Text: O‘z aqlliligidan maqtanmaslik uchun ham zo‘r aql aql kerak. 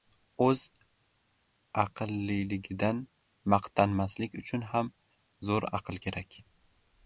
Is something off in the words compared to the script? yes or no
yes